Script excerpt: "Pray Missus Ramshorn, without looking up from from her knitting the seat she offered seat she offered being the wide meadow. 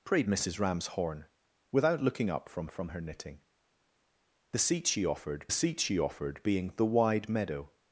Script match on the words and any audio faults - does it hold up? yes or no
yes